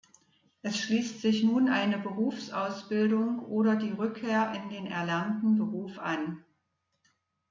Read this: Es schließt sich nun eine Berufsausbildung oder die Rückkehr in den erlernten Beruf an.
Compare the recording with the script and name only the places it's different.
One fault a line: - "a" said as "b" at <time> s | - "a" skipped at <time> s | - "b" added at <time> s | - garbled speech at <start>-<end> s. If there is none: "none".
none